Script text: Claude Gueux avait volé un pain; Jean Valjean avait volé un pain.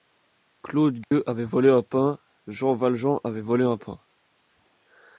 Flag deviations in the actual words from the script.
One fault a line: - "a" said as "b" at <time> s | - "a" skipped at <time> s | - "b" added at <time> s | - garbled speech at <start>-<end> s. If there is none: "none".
none